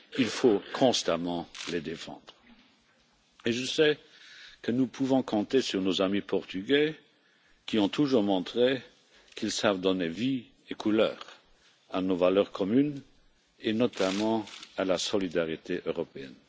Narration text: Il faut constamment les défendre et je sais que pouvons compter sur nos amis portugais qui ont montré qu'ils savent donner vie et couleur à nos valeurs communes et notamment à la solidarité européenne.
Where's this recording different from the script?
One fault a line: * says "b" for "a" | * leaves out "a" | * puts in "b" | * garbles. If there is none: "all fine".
* puts in "nous"
* puts in "toujours"